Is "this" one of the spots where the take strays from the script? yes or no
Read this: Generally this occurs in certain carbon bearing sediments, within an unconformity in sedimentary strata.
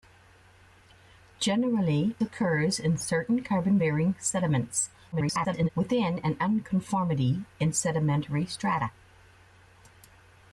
yes